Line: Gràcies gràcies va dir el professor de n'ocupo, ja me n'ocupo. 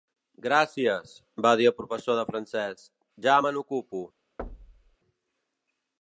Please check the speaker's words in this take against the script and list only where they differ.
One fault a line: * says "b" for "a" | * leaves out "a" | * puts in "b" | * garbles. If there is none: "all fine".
* leaves out "gràcies"
* says "francès" for "n'ocupo"